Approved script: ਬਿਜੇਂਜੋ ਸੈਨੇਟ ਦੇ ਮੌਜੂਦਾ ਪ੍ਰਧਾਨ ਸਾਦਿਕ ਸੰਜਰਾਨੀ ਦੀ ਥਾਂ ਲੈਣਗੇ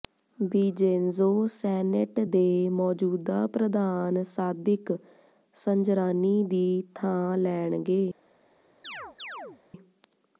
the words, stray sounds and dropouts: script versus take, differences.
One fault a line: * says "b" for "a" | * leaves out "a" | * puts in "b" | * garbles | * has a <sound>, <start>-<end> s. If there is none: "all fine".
* has a chirp, 8.8-9.6 s